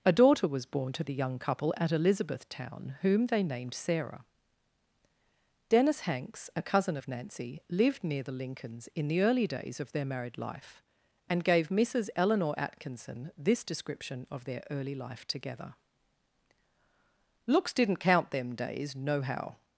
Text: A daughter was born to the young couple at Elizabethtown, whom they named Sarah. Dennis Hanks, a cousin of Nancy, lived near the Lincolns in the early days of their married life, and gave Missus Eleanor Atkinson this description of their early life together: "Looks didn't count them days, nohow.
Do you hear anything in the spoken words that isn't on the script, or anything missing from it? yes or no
no